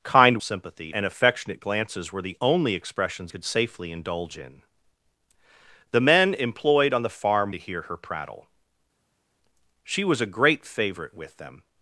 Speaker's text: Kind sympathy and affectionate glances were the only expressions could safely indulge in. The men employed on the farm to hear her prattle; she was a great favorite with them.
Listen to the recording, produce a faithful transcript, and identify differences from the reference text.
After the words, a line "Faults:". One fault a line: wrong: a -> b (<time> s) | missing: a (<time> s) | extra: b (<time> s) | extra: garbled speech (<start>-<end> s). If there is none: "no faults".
Kind sympathy and affectionate glances were the only expressions could safely indulge in. The men employed on the farm to hear her prattle; she was a great favorite with them.
Faults:
no faults